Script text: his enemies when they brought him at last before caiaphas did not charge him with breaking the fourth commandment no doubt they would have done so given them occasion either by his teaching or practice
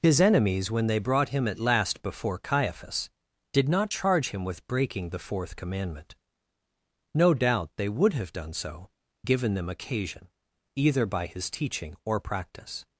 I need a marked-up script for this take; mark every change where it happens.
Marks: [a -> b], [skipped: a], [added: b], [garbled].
his enemies when they brought him at last before caiaphas did not charge him with breaking the fourth commandment no doubt they would have done so given them occasion either by his teaching or practice